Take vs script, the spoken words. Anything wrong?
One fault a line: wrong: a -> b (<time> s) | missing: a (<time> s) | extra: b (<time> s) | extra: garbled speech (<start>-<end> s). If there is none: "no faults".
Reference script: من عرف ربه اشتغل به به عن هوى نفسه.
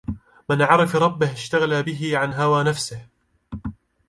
missing: به (2.2 s)